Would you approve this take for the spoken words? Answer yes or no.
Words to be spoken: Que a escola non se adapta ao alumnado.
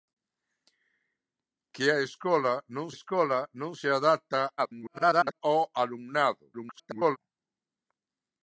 no